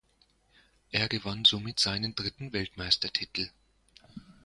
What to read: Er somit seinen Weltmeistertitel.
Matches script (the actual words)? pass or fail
fail